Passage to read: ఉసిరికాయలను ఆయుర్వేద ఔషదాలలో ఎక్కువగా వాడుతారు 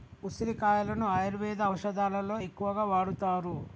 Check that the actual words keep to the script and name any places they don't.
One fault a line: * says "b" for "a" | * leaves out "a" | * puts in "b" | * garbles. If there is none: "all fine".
all fine